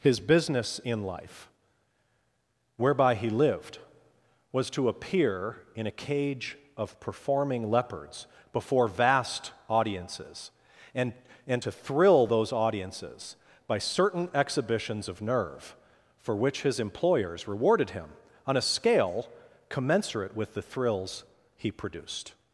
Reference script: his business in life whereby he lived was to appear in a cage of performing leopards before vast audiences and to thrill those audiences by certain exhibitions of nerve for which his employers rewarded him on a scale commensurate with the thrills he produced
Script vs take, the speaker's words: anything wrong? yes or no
yes